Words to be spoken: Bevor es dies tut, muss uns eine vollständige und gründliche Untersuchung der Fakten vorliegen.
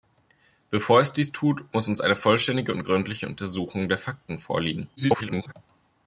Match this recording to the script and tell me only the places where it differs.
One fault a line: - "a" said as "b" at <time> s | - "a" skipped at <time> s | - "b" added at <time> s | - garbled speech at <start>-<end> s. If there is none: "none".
- garbled speech at 5.0-5.5 s